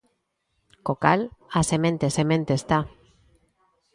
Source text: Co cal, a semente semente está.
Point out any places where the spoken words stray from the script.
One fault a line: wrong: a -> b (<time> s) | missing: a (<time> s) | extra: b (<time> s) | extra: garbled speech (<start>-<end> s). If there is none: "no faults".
no faults